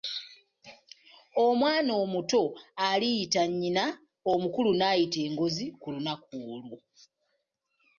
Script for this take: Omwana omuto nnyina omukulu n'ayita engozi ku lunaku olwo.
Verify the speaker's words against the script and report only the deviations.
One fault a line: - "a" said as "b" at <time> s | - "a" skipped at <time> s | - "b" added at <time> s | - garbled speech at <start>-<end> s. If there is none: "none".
- "aliyita" added at 2.9 s